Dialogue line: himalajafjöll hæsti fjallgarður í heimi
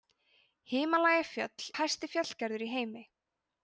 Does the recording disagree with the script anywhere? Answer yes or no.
no